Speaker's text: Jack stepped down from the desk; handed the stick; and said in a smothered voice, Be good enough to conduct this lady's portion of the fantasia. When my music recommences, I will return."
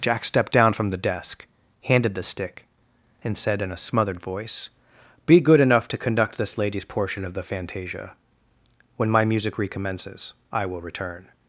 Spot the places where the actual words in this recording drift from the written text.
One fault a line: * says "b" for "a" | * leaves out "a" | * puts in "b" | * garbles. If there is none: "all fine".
all fine